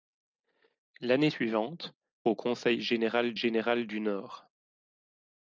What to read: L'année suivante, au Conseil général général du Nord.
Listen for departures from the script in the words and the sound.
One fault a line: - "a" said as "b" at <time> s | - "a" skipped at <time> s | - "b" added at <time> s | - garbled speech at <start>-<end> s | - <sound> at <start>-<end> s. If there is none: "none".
none